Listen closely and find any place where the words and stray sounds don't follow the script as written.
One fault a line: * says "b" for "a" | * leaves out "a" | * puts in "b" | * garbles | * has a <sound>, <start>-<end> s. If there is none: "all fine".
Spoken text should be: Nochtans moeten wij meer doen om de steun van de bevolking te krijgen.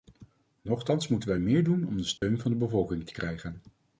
* has a dropout, 2.2-2.2 s